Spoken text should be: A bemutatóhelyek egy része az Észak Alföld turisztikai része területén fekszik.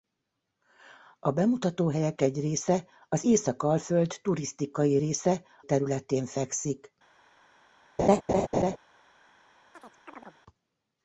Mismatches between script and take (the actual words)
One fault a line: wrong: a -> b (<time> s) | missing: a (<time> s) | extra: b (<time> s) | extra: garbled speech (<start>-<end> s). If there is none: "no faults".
no faults